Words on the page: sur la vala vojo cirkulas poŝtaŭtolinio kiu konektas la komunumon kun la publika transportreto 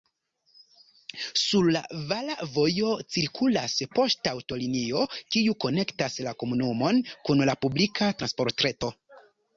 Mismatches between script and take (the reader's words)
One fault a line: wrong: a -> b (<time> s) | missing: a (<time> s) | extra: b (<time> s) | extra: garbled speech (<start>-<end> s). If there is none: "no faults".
no faults